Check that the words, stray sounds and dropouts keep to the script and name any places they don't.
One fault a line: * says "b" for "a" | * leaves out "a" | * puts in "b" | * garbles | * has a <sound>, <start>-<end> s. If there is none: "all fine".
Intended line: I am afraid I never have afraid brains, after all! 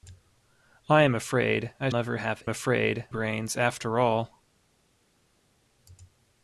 all fine